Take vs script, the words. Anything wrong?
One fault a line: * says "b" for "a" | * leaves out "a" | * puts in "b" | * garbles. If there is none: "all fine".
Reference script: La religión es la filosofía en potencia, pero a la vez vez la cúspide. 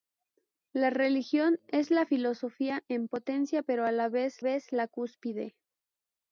all fine